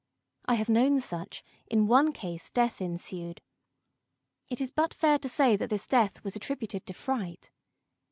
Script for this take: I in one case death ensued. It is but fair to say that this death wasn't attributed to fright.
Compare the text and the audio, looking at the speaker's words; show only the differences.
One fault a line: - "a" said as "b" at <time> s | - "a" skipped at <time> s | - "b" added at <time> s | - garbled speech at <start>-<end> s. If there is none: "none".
- "have known such" added at 0.6 s
- "wasn't" said as "was" at 6.2 s